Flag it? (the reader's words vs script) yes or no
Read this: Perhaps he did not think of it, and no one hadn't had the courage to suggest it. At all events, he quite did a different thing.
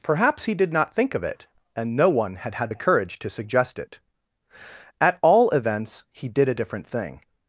yes